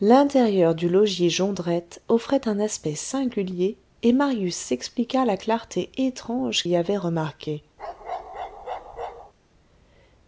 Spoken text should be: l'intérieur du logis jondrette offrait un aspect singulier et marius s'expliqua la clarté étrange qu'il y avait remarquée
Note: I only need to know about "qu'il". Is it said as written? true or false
false